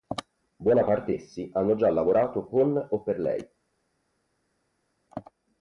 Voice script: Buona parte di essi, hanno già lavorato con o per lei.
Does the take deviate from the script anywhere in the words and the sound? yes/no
yes